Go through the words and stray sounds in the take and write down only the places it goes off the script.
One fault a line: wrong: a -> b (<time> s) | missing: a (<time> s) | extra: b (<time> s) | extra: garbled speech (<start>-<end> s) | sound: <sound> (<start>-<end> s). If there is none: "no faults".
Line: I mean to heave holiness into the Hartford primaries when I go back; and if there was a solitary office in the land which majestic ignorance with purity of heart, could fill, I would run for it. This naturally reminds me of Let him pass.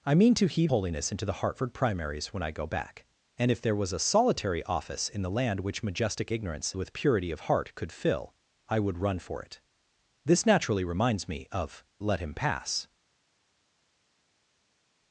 no faults